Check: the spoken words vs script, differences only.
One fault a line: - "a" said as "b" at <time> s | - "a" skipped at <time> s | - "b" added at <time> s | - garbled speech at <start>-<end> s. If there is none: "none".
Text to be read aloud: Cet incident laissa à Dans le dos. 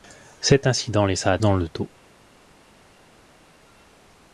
none